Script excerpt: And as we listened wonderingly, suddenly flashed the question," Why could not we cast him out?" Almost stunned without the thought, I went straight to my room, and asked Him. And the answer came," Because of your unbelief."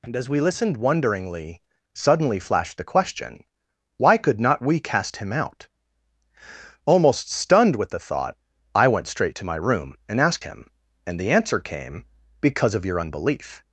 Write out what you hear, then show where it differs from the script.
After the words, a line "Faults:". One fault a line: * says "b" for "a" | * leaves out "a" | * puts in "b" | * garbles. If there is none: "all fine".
And as we listened wonderingly, suddenly flashed the question," Why could not we cast him out?" Almost stunned with the thought, I went straight to my room, and asked Him. And the answer came," Because of your unbelief."
Faults:
* says "with" for "without"